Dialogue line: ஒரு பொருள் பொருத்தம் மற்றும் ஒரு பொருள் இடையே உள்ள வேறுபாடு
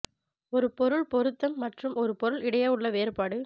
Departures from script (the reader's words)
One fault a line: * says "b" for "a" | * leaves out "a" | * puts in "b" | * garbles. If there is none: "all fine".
all fine